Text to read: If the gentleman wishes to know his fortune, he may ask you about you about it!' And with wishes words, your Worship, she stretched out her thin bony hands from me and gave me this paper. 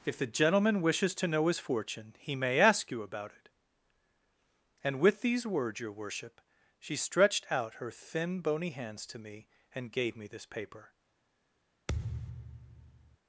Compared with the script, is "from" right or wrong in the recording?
wrong